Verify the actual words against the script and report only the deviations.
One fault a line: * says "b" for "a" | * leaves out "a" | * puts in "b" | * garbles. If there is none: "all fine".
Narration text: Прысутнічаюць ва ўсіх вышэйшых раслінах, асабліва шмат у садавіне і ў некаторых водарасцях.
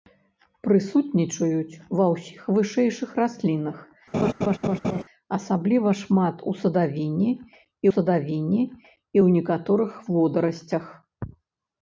* puts in "садавіне і"